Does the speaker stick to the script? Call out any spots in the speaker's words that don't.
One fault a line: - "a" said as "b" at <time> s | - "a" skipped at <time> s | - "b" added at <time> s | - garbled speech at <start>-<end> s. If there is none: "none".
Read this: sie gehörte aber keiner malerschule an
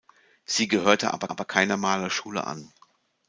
- "aber" added at 1.3 s